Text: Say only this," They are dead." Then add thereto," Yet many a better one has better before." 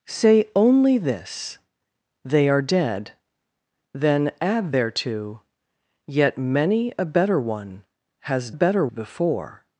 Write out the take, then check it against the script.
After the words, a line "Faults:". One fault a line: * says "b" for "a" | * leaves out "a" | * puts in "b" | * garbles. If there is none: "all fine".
Say only this," They are dead." Then add thereto," Yet many a better one has better before."
Faults:
all fine